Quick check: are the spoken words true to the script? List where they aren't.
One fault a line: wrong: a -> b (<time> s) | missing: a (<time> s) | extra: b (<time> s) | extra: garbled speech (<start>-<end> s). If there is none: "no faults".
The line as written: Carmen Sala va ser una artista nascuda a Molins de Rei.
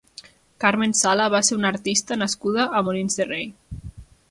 no faults